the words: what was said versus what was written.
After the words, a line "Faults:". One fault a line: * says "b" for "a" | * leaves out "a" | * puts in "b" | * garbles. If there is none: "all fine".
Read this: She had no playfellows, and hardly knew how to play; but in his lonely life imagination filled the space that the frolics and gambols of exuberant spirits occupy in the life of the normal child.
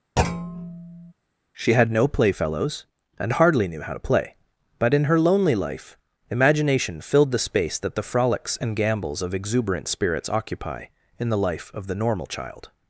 She had no playfellows, and hardly knew how to play; but in her lonely life imagination filled the space that the frolics and gambols of exuberant spirits occupy in the life of the normal child.
Faults:
* says "her" for "his"